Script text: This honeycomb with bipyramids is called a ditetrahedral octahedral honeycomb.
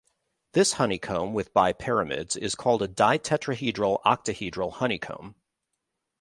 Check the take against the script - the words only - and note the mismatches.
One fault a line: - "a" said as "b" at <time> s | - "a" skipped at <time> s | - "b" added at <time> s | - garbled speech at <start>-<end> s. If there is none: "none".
none